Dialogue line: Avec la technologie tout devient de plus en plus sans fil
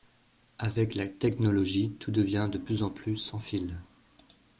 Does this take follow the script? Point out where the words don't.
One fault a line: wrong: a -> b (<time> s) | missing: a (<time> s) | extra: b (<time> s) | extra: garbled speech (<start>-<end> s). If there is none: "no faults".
no faults